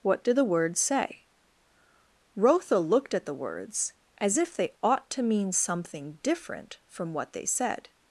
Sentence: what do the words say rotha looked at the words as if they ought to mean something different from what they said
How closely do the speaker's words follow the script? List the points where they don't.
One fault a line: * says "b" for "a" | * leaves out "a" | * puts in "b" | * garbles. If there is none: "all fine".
all fine